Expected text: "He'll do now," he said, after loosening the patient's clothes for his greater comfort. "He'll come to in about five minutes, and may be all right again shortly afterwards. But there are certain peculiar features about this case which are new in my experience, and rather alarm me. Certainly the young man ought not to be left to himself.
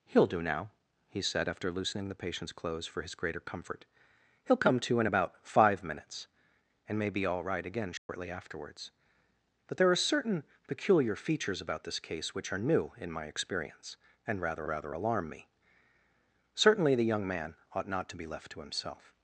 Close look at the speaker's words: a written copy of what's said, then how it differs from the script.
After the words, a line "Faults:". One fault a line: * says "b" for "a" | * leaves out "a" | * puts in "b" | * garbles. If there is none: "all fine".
"He'll do now," he said, after loosening the patient's clothes for his greater comfort. "He'll come to in about five minutes, and may be all right again shortly afterwards. But there are certain peculiar features about this case which are new in my experience, and rather rather alarm me. Certainly the young man ought not to be left to himself.
Faults:
* puts in "rather"